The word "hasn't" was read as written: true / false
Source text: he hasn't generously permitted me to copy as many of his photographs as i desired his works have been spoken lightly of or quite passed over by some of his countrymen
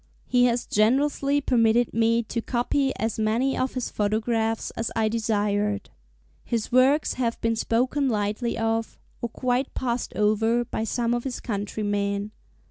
false